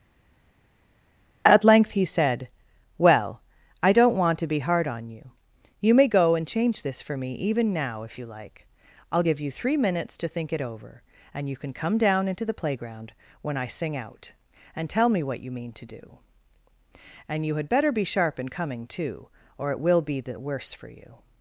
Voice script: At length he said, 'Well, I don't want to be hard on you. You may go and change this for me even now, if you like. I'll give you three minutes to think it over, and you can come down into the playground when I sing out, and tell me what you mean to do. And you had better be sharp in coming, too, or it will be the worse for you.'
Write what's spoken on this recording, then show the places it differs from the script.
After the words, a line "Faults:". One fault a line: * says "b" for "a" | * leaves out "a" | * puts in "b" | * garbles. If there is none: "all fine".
At length he said, 'Well, I don't want to be hard on you. You may go and change this for me even now, if you like. I'll give you three minutes to think it over, and you can come down into the playground when I sing out, and tell me what you mean to do. And you had better be sharp in coming, too, or it will be the worse for you.'
Faults:
all fine